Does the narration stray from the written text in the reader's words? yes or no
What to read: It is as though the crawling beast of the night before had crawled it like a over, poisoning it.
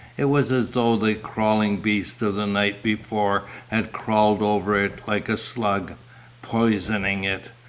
yes